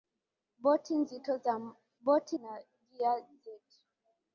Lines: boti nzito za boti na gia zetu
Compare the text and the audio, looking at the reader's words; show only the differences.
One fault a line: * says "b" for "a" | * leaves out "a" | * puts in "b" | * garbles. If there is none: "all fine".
all fine